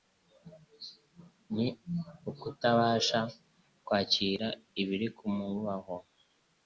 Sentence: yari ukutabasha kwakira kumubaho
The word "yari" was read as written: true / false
false